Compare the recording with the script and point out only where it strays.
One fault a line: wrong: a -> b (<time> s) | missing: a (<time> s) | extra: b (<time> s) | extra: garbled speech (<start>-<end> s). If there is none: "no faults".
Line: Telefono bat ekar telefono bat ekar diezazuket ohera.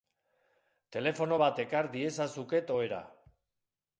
missing: telefono bat ekar (1.9 s)